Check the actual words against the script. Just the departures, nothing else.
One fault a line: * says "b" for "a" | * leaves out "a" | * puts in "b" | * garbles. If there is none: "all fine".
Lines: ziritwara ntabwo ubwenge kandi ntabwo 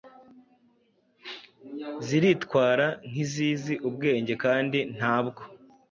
* says "nk'izizi" for "ntabwo"